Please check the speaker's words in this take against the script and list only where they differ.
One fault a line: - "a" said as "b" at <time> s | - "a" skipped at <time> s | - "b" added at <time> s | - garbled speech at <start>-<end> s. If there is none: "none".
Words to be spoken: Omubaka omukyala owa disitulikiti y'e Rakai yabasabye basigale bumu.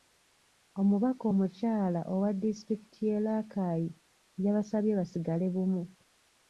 none